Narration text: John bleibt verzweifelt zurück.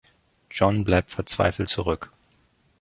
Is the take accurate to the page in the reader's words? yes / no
yes